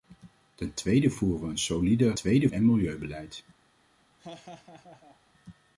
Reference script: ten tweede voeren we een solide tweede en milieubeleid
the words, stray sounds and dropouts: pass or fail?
fail